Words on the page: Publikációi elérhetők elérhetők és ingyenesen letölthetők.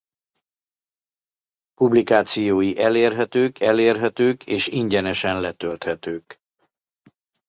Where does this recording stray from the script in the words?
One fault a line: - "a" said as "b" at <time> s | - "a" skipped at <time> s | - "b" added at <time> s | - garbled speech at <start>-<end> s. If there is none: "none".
none